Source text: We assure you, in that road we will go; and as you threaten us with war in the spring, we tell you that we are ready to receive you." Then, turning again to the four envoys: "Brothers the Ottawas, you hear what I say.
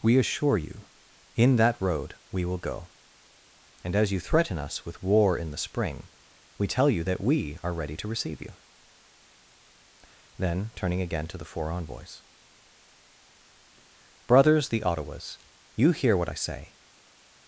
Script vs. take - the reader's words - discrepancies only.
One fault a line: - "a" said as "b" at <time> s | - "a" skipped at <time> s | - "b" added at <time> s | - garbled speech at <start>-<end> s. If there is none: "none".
none